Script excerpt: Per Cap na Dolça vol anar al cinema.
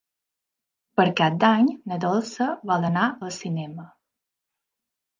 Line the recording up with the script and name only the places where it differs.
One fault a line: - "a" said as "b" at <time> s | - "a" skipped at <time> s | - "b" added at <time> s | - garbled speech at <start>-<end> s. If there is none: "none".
- "d'Any" added at 1.4 s